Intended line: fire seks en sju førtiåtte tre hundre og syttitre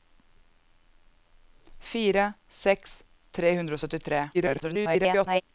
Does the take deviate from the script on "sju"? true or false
true